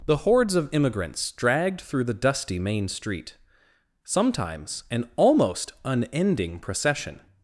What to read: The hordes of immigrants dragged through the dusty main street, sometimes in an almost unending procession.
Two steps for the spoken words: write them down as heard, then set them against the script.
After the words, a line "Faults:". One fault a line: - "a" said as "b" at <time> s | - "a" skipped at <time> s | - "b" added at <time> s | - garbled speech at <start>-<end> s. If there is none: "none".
The hordes of immigrants dragged through the dusty main street, sometimes an almost unending procession.
Faults:
- "in" skipped at 4.8 s